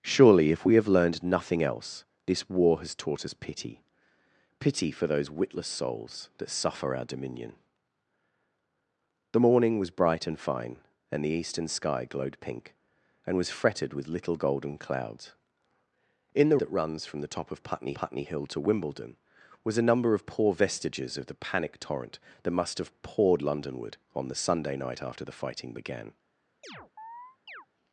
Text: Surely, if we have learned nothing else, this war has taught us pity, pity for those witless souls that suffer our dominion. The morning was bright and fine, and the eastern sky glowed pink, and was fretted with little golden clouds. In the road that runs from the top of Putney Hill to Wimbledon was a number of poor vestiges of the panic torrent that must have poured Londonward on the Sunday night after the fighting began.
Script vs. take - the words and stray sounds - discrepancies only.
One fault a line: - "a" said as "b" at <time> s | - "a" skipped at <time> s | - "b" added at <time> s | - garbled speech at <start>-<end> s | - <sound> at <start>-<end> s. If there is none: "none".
- "road" skipped at 16.6 s
- "Putney" added at 17.9 s
- chirp at 26.6-27.7 s